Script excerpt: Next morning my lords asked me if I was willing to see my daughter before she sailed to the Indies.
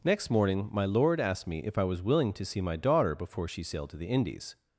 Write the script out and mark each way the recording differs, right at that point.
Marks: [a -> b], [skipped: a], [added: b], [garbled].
Next morning my [lords -> lord] asked me if I was willing to see my daughter before she sailed to the Indies.